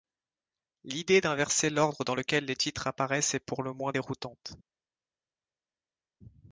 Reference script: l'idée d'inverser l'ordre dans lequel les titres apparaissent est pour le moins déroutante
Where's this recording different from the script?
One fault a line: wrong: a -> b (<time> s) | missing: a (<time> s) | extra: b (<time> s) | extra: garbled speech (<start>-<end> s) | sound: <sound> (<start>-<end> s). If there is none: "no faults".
no faults